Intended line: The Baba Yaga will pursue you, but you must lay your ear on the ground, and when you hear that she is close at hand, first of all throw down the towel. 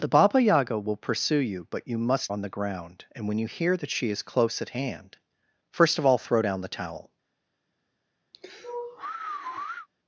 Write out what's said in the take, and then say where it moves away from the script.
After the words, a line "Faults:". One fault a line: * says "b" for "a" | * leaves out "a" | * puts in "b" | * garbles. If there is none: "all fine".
The Baba Yaga will pursue you, but you must on the ground, and when you hear that she is close at hand, first of all throw down the towel.
Faults:
* leaves out "lay your ear"